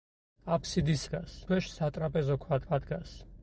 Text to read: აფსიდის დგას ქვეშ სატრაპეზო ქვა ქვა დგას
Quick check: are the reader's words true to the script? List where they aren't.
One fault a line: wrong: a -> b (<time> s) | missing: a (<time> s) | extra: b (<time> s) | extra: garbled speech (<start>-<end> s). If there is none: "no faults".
no faults